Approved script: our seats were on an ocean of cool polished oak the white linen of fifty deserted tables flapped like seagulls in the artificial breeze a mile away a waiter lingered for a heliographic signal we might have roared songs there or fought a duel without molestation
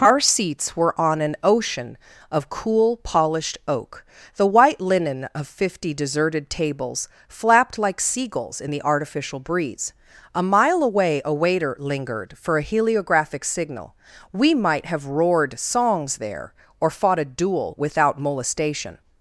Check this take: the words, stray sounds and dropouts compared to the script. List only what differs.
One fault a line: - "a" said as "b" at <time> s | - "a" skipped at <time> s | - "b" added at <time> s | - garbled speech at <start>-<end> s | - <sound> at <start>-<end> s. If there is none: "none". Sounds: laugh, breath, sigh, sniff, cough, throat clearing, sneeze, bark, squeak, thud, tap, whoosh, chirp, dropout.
none